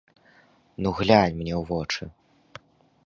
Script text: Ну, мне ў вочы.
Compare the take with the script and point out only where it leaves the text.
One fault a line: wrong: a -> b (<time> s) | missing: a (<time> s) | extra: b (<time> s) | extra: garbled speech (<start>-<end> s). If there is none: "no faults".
extra: глянь (1.0 s)